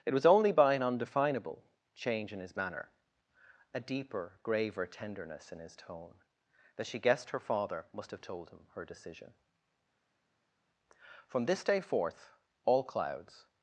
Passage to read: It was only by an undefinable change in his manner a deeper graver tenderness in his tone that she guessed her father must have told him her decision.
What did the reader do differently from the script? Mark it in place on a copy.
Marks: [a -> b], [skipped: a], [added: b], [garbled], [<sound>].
It was only by an undefinable change in his manner a deeper graver tenderness in his tone that she guessed her father must have told him her decision. [added: From this day forth all clouds]